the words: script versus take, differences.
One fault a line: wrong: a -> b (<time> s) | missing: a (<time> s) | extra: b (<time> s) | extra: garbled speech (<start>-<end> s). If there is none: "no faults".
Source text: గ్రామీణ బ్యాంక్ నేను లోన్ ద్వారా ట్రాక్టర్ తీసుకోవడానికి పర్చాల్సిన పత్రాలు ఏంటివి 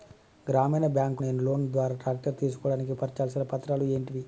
no faults